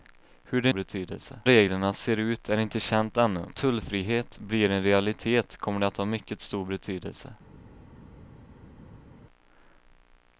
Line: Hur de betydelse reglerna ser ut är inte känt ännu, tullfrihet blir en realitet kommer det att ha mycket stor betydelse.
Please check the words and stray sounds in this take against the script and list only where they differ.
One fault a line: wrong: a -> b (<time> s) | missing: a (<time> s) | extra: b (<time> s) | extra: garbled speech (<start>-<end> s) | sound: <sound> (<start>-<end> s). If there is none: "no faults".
no faults